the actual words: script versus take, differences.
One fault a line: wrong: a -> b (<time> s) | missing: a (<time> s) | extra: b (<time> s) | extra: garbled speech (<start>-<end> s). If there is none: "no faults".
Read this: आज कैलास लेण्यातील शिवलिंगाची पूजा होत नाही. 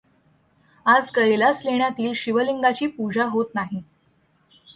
no faults